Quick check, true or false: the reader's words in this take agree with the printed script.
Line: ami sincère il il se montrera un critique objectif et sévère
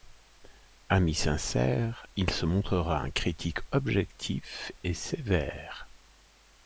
false